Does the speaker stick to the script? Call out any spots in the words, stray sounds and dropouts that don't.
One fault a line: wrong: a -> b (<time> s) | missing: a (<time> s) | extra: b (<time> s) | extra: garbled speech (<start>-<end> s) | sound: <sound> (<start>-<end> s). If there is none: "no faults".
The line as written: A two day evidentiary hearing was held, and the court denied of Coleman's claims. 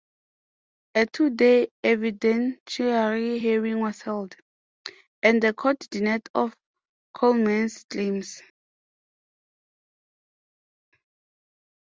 no faults